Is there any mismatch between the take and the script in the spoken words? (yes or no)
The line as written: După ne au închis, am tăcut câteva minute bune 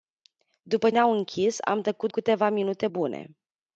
no